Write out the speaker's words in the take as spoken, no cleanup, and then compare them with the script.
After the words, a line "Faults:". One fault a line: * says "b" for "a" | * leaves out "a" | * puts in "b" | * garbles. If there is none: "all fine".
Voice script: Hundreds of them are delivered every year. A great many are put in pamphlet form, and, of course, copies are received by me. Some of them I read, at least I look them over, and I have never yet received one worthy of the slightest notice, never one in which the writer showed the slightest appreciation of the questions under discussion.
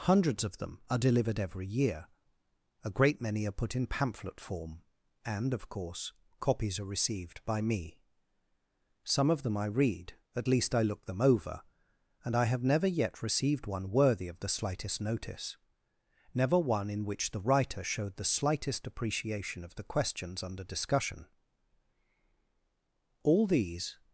Hundreds of them are delivered every year. A great many are put in pamphlet form, and, of course, copies are received by me. Some of them I read, at least I look them over, and I have never yet received one worthy of the slightest notice, never one in which the writer showed the slightest appreciation of the questions under discussion. All these
Faults:
* puts in "All these"